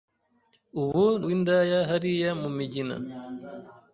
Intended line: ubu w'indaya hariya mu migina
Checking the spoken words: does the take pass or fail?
pass